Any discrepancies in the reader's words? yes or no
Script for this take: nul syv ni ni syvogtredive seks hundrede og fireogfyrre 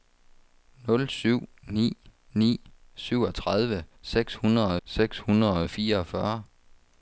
yes